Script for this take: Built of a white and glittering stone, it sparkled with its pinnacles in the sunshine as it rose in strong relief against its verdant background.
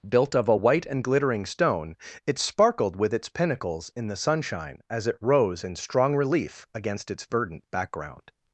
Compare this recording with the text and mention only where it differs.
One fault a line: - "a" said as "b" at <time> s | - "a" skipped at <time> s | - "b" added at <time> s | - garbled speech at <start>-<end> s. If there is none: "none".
none